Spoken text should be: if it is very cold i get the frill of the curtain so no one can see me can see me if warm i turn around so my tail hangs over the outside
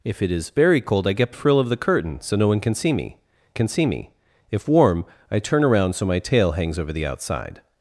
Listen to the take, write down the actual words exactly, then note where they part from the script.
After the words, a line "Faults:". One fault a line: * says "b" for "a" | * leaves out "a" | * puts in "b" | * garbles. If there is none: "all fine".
if it is very cold i get the frill of the curtain so no one can see me can see me if warm i turn around so my tail hangs over the outside
Faults:
all fine